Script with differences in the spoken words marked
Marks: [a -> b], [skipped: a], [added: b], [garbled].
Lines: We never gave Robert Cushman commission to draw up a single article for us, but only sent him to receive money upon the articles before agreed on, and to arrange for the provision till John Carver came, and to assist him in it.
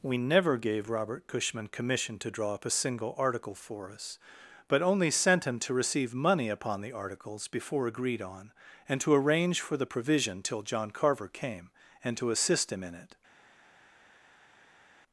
We never gave Robert Cushman commission to draw up a single article for us, but only sent him to receive money upon the articles before agreed on, and to arrange for the provision till John Carver came, and to assist him in it.